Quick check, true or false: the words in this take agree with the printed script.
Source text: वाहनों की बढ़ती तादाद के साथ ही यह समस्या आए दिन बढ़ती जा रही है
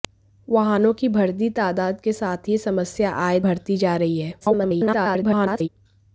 false